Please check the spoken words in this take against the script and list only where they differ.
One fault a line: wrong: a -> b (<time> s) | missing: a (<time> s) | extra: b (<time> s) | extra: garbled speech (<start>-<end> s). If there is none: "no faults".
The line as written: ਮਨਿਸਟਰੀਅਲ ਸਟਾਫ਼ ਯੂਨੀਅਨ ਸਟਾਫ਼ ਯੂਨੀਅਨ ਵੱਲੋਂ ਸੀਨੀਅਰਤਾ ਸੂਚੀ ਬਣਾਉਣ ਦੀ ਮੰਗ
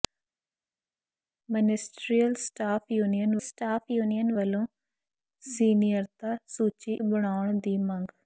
no faults